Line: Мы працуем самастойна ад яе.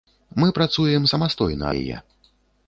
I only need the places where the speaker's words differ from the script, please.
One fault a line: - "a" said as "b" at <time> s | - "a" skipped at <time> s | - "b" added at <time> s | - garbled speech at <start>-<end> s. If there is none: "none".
- "ад" skipped at 1.6 s